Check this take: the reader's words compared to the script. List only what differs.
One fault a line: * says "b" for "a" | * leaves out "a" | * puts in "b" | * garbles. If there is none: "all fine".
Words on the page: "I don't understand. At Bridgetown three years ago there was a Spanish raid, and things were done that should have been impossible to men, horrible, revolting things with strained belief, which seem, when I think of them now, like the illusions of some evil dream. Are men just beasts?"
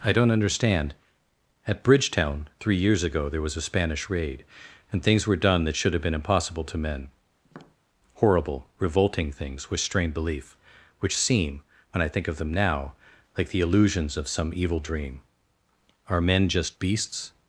all fine